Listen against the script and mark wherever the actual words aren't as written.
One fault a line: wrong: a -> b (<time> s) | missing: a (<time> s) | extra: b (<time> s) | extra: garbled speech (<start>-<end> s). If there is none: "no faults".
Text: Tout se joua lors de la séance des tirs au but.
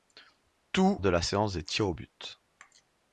missing: se joua lors (1.0 s)